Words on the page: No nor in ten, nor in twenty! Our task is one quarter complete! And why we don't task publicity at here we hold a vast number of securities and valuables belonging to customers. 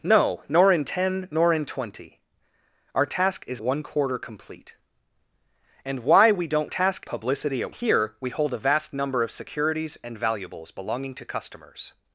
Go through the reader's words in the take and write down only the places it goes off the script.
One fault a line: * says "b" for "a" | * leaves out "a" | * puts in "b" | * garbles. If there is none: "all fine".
all fine